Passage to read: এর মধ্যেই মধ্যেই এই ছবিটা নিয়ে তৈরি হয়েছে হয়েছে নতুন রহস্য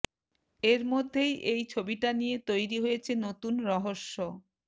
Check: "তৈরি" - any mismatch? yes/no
no